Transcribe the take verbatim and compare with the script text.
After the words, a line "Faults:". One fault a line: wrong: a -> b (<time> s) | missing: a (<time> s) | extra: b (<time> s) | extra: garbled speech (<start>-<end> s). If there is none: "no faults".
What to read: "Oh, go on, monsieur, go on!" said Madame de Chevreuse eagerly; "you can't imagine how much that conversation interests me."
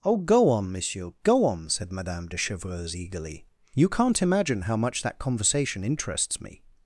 "Oh, go on, monsieur, go on!" said Madame de Chevreuse eagerly; "you can't imagine how much that conversation interests me."
Faults:
no faults